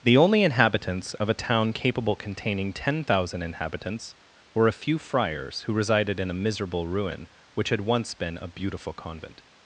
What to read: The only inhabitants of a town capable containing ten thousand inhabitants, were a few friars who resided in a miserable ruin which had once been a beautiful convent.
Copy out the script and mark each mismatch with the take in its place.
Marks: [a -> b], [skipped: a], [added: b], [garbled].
The only inhabitants of a town capable containing ten thousand inhabitants, were a few friars who resided in a miserable ruin which had once been a beautiful convent.